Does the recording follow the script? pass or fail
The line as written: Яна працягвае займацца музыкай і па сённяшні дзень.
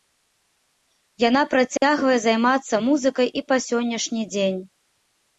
pass